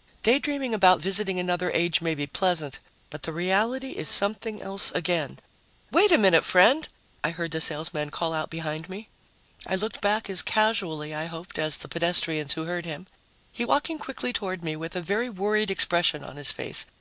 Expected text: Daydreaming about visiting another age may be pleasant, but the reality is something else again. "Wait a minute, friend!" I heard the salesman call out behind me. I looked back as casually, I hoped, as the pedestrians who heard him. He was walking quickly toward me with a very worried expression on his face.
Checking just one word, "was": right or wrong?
wrong